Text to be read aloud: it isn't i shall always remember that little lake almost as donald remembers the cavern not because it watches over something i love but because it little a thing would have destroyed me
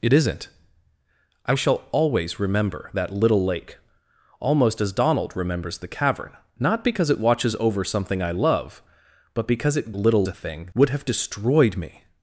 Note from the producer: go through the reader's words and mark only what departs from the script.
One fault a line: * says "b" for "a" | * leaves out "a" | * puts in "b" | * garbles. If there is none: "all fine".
all fine